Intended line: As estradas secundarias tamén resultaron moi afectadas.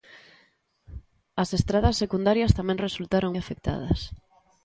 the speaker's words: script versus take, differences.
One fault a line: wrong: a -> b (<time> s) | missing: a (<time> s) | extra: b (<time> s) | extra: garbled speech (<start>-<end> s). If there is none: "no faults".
missing: moi (3.3 s)